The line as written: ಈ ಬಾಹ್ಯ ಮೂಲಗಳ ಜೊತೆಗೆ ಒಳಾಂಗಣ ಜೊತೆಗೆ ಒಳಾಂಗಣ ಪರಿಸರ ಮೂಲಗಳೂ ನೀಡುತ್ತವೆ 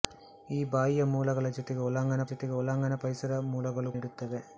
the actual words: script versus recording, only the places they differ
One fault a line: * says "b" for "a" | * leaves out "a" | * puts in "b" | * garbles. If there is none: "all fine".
all fine